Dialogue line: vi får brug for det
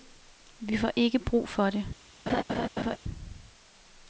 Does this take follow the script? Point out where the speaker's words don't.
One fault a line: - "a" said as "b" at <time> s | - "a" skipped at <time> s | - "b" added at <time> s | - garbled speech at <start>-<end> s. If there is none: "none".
- "ikke" added at 0.9 s